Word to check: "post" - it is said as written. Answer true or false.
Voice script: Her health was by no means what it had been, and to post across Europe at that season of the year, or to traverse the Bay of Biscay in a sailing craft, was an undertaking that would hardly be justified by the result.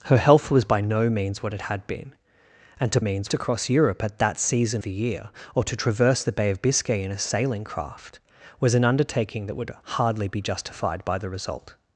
false